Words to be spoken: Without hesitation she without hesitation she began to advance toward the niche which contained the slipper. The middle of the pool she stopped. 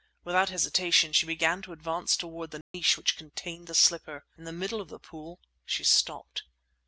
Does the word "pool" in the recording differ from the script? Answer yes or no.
no